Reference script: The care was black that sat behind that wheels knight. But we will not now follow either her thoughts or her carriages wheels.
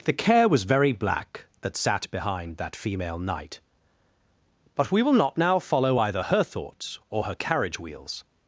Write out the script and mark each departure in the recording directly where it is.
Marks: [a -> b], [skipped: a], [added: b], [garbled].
The care was [added: very] black that sat behind that [wheels -> female] knight. But we will not now follow either her thoughts or her [carriages -> carriage] wheels.